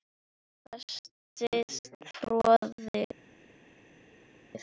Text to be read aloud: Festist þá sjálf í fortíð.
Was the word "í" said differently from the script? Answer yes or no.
yes